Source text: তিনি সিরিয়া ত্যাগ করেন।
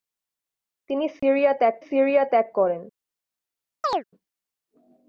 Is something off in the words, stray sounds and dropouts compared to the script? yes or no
yes